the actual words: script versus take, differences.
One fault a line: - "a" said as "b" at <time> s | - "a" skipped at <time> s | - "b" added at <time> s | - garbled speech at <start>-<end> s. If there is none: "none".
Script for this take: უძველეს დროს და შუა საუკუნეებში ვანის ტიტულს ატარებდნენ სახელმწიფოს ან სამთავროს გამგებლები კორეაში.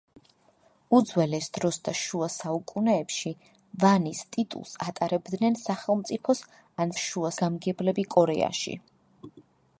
- "სამთავროს" said as "შუა" at 7.0 s